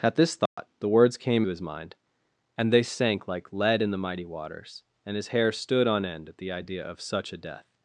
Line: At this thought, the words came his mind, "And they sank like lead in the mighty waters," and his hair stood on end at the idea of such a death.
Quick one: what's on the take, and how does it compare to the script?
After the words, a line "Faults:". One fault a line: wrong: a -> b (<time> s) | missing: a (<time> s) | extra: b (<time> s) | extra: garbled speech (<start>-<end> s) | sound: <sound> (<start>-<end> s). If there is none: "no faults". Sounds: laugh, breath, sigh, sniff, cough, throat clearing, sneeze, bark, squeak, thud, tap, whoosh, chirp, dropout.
At this thought, the words came his mind, "And they sank like lead in the mighty waters," and his hair stood on end at the idea of such a death.
Faults:
sound: dropout (0.5-0.6 s)